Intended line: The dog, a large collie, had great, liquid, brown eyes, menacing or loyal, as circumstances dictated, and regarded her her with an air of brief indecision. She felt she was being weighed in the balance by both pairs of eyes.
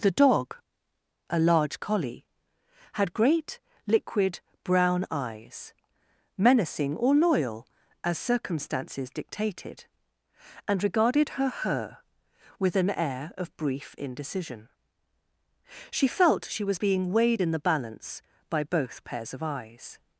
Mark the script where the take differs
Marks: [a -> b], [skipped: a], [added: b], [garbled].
The dog, a large collie, had great, liquid, brown eyes, menacing or loyal, as circumstances dictated, and regarded her her with an air of brief indecision. She felt she was being weighed in the balance by both pairs of eyes.